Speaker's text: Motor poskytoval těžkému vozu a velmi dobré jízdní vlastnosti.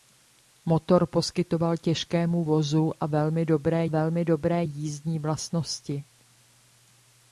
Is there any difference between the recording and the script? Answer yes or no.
yes